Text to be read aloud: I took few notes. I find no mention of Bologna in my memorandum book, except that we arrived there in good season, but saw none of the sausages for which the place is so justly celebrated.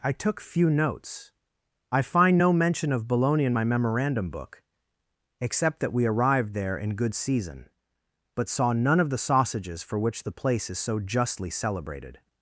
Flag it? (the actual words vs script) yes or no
no